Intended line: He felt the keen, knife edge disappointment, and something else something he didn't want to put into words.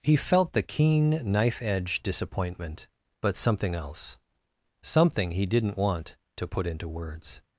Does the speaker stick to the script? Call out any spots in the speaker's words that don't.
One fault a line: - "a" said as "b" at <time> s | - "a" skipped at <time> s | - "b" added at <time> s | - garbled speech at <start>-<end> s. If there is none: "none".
- "and" said as "but" at 3.2 s